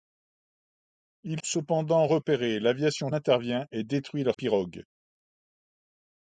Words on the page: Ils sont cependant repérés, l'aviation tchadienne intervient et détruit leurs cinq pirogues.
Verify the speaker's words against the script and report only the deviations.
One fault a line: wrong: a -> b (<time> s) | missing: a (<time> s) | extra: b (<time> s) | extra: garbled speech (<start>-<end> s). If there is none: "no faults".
missing: sont (1.4 s)
missing: tchadienne (3.1 s)
missing: cinq (4.4 s)